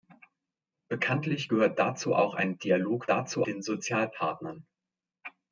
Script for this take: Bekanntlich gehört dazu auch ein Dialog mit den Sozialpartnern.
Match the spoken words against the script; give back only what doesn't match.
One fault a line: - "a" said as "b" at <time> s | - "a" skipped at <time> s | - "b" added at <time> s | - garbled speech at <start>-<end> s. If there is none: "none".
- "mit" said as "dazu" at 3.1 s